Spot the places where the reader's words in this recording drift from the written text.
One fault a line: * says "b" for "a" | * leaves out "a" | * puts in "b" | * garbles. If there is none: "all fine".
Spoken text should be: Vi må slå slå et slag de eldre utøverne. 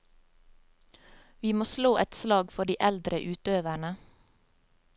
* leaves out "slå"
* puts in "for"